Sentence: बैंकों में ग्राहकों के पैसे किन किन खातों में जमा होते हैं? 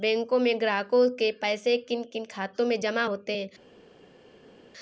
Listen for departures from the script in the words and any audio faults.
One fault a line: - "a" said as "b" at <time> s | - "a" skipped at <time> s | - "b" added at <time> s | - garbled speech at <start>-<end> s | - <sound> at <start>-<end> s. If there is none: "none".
none